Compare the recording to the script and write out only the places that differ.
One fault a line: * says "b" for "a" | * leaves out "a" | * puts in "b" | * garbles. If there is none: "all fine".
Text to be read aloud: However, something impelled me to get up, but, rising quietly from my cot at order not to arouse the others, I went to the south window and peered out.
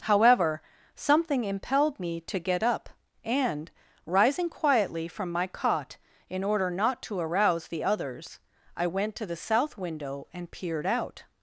* says "and" for "but"
* says "in" for "at"